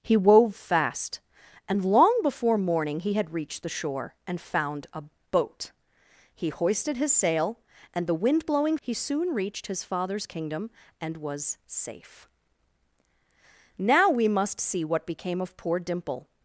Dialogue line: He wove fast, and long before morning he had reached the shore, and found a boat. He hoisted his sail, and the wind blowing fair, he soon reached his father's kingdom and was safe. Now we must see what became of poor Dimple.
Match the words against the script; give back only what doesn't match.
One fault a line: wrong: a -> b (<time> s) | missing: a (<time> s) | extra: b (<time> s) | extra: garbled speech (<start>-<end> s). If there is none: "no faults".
missing: fair (8.8 s)